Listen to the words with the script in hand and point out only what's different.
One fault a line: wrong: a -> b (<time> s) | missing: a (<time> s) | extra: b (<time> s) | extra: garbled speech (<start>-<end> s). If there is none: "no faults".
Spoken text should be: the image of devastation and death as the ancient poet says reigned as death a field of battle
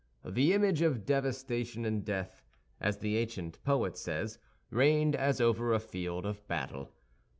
wrong: death -> over (5.4 s)